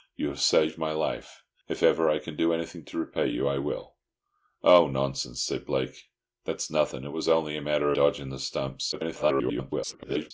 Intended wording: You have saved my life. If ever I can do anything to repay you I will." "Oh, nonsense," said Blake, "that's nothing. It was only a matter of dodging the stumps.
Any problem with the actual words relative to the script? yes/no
yes